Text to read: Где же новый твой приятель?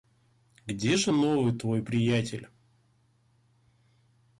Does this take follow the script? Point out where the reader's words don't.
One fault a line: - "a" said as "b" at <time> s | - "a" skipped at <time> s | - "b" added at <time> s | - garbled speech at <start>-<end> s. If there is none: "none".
none